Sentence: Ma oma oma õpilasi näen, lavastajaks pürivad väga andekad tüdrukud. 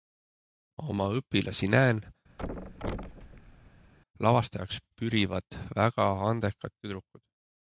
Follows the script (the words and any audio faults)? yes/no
no